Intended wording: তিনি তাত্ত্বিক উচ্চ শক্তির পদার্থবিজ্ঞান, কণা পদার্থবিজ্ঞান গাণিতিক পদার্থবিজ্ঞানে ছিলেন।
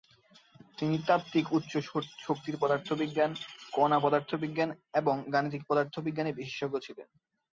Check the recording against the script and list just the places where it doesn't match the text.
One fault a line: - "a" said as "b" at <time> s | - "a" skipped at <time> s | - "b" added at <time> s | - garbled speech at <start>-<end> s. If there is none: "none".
- "এবং" added at 4.9 s
- "বিশেষজ্ঞ" added at 6.3 s